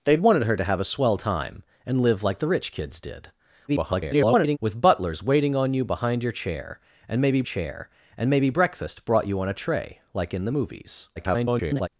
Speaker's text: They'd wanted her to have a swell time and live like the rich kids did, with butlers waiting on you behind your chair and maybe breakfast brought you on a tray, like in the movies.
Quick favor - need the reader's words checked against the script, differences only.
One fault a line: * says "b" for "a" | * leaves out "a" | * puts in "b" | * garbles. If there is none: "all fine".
* garbles
* puts in "chair and maybe"
* garbles